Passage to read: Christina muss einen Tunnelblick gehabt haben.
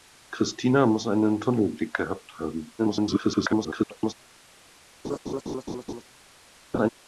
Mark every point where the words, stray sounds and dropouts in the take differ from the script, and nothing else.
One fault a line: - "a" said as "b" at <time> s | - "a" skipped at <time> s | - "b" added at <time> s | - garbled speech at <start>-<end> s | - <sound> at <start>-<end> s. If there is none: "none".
- garbled speech at 2.8-4.1 s
- laugh at 5.0-6.0 s
- laugh at 6.7-6.9 s